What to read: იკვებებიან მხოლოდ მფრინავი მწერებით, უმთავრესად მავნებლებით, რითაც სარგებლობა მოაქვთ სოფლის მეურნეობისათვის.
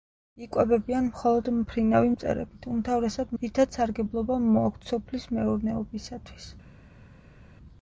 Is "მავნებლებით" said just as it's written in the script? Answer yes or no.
no